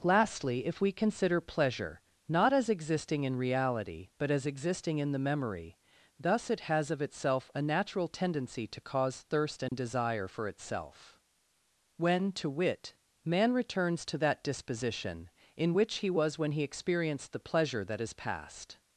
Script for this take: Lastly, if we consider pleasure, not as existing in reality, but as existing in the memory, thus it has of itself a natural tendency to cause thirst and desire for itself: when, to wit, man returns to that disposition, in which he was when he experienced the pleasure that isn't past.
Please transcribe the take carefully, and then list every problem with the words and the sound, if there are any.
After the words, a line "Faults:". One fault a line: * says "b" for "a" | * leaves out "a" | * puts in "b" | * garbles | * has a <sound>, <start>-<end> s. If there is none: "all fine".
Lastly, if we consider pleasure, not as existing in reality, but as existing in the memory, thus it has of itself a natural tendency to cause thirst and desire for itself: when, to wit, man returns to that disposition, in which he was when he experienced the pleasure that is past.
Faults:
* has a dropout, 9.7-9.7 s
* says "is" for "isn't"